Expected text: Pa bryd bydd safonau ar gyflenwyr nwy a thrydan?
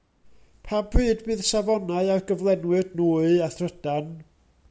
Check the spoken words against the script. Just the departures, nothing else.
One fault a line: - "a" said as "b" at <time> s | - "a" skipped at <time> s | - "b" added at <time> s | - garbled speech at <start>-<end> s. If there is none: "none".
none